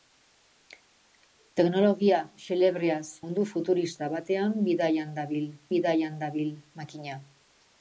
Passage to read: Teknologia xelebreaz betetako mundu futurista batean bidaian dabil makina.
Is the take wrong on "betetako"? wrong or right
wrong